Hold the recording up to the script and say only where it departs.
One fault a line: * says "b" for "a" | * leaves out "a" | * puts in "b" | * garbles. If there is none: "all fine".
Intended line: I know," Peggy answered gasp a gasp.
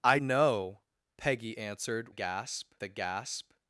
all fine